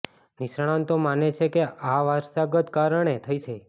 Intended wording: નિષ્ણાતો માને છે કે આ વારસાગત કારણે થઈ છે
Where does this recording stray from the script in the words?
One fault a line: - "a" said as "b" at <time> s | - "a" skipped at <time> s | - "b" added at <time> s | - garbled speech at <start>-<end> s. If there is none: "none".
none